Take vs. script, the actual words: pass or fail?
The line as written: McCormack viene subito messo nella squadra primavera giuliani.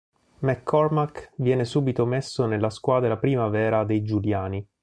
fail